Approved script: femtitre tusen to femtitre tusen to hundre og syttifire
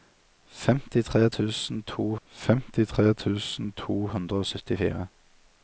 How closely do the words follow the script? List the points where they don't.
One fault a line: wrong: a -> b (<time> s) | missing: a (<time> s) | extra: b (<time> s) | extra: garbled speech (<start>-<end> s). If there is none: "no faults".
no faults